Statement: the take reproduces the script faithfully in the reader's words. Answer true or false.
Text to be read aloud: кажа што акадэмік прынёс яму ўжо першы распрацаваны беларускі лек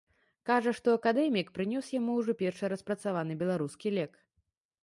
true